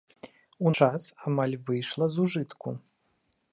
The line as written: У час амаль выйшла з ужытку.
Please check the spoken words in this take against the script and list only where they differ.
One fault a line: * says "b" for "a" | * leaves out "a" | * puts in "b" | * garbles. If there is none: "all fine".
all fine